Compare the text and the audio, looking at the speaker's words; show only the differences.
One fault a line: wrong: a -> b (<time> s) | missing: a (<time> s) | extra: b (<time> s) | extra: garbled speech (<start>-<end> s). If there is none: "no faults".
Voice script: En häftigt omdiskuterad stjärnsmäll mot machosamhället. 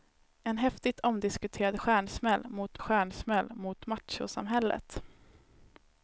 extra: stjärnsmäll mot (2.8 s)